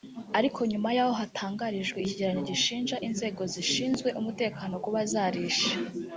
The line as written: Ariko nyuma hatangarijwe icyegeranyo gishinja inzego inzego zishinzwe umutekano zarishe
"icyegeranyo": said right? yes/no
yes